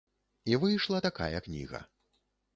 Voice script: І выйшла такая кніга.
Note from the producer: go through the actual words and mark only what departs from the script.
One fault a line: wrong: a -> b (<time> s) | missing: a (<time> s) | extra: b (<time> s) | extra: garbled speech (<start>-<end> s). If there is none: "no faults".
no faults